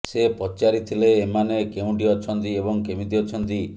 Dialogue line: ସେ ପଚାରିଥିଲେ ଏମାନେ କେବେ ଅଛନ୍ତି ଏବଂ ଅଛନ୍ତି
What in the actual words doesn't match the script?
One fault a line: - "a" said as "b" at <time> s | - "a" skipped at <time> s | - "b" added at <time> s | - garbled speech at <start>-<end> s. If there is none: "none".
- "କେବେ" said as "କେଉଁଠି" at 1.7 s
- "କେମିତି" added at 2.9 s